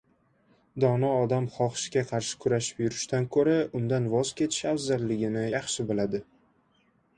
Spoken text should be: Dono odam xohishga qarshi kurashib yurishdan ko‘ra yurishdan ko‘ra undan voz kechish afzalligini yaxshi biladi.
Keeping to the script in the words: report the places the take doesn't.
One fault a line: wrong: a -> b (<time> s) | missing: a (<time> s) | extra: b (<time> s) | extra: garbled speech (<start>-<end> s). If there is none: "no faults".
missing: yurishdan ko‘ra (3.5 s)